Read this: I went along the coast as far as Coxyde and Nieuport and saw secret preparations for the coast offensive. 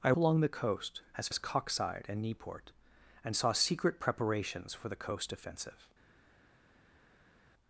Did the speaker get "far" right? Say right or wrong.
wrong